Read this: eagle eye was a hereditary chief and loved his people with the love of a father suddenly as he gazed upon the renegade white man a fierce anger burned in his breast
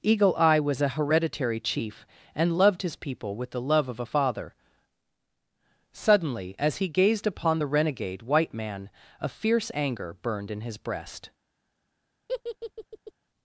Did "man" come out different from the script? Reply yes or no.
no